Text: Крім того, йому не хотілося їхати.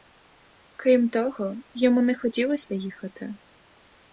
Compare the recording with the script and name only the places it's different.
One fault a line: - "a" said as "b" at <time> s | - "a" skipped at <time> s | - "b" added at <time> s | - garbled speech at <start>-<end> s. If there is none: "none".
none